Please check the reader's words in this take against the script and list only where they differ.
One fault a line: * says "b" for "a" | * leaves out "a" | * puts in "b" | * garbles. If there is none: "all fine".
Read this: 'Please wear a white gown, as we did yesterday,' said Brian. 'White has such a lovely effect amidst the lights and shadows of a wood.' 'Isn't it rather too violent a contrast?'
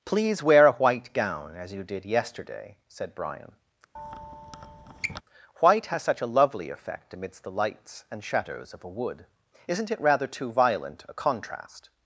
* says "you" for "we"